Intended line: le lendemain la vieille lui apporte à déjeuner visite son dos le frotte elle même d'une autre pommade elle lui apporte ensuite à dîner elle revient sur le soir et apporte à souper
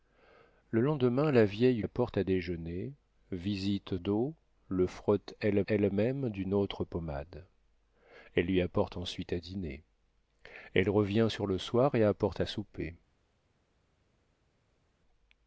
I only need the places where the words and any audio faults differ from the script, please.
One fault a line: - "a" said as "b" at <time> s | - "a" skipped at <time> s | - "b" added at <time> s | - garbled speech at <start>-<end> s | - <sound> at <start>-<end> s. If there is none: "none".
- "lui" skipped at 1.8 s
- "son" skipped at 4.0 s
- "elle" added at 5.6 s